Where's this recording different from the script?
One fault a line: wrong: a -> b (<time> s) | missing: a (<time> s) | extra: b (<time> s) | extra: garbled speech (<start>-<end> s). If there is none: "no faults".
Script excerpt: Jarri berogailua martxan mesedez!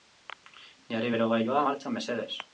no faults